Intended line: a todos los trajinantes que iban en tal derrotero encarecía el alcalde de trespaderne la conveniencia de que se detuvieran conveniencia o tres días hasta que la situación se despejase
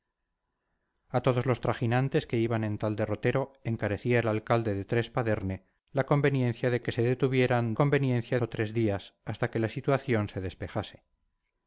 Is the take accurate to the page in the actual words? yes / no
yes